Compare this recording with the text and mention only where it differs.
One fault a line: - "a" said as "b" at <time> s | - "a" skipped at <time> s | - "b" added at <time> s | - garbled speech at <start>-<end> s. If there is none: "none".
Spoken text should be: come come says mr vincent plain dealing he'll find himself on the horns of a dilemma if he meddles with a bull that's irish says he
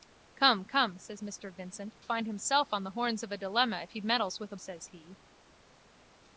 - "plain dealing he'll" skipped at 1.9 s
- "bull that's irish" skipped at 4.6 s